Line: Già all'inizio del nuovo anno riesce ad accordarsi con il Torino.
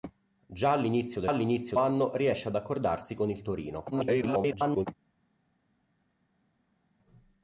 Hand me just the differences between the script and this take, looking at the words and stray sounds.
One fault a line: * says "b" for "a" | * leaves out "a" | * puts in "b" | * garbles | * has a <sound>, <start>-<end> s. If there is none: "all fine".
* says "all'inizio" for "nuovo"
* garbles